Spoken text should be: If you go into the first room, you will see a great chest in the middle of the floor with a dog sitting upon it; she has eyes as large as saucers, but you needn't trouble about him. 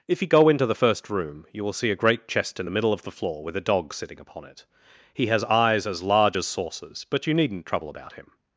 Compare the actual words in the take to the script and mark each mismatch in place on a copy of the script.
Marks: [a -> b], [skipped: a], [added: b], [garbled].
If you go into the first room, you will see a great chest in the middle of the floor with a dog sitting upon it; [she -> he] has eyes as large as saucers, but you needn't trouble about him.